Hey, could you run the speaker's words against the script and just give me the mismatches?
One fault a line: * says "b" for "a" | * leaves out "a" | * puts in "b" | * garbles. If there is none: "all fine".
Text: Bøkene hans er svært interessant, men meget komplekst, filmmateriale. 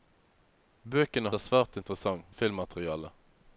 * leaves out "hans"
* leaves out "men meget komplekst"